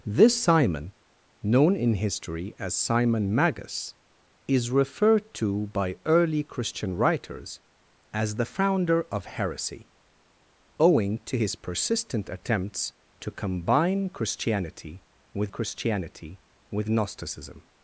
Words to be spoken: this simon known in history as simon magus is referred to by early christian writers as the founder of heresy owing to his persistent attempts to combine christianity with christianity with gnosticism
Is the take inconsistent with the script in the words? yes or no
no